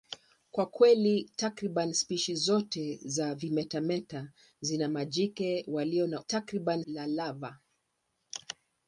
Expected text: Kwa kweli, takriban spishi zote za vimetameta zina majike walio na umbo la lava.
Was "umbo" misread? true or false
true